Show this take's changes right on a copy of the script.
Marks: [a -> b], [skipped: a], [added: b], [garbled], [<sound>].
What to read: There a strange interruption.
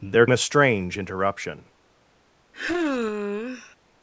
There a strange interruption. [sigh]